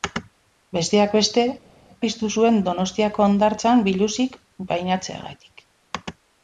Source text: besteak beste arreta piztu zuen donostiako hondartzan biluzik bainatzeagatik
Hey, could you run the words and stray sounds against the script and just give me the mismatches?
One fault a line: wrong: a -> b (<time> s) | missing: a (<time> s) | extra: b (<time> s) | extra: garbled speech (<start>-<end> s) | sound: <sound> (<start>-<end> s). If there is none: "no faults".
missing: arreta (1.4 s)